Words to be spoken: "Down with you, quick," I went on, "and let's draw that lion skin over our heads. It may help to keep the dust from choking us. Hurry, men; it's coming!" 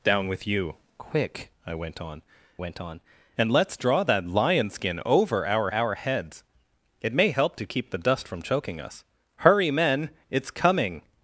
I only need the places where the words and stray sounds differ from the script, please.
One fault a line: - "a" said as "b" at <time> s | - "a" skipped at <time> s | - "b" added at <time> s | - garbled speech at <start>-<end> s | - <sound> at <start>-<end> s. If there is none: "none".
- "went on" added at 2.6 s
- "our" added at 5.7 s